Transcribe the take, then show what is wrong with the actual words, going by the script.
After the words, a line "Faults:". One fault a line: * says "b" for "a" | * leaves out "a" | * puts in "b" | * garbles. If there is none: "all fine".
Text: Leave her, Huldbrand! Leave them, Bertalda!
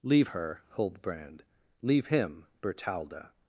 Leave her, Huldbrand! Leave him, Bertalda!
Faults:
* says "him" for "them"